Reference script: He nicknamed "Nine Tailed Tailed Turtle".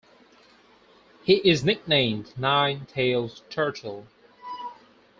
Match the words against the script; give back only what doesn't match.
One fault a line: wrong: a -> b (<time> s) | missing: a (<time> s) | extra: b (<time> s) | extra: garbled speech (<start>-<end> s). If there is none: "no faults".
extra: is (1.5 s)
missing: Tailed (3.4 s)